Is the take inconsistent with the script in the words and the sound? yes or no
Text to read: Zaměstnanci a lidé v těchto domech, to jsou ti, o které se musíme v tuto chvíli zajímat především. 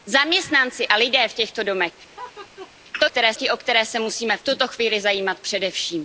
yes